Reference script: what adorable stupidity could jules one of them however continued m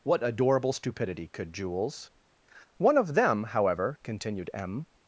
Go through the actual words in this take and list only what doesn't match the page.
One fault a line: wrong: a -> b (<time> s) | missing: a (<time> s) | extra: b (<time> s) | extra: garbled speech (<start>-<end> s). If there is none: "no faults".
no faults